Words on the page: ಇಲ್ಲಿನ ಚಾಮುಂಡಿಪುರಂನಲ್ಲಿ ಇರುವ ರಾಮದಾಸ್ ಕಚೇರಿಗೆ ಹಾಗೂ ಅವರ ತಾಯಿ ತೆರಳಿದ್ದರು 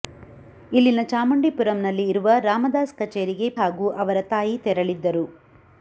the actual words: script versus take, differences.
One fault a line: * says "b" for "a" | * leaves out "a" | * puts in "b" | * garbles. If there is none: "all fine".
all fine